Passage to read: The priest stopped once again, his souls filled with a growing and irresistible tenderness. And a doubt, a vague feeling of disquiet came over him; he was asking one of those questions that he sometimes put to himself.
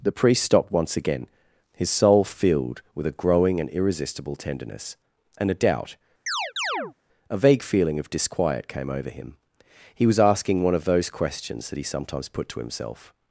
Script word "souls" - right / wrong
wrong